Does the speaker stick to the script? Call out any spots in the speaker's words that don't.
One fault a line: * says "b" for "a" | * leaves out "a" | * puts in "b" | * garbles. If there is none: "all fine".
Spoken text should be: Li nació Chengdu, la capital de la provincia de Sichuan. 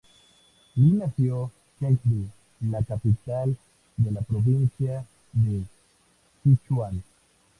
all fine